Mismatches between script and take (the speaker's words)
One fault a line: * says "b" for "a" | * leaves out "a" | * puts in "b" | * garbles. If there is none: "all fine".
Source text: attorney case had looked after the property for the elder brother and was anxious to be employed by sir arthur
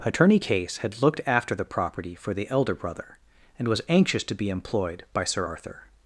all fine